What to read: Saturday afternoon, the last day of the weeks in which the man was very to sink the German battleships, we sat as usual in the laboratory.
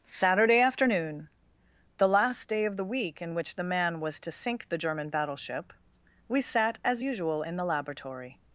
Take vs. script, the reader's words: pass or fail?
fail